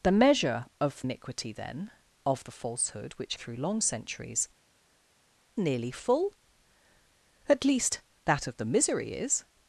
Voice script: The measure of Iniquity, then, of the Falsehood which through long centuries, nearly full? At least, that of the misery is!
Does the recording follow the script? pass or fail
pass